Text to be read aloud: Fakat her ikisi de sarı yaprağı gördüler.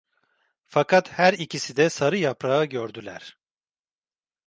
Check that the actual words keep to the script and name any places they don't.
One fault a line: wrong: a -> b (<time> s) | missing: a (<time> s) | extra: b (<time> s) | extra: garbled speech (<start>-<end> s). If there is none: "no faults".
no faults